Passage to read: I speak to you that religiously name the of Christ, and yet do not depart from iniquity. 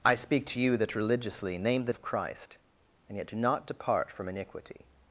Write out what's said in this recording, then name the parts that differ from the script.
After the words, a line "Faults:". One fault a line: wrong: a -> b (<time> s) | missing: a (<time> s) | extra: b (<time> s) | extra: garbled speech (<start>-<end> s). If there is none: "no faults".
I speak to you that religiously name the of Christ, and yet do not depart from iniquity.
Faults:
no faults